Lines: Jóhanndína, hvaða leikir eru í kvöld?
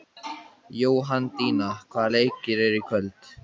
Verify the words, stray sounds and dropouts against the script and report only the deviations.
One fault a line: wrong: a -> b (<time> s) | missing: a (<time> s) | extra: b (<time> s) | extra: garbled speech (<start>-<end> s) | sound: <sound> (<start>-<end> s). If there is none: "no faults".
no faults